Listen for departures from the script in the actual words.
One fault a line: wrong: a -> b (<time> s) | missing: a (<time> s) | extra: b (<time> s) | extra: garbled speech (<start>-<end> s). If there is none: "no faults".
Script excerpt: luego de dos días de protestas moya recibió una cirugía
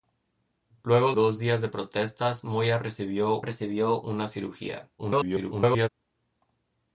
missing: de (1.1 s)
extra: recibió (3.4 s)
extra: garbled speech (5.0-5.9 s)